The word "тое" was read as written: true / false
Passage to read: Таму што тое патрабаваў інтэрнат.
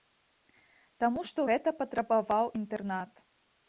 false